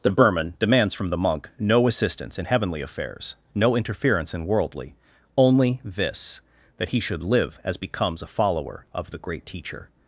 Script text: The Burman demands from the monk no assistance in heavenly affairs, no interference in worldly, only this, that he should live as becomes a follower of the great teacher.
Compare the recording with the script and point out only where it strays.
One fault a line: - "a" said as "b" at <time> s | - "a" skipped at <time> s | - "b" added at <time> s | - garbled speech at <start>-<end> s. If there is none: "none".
none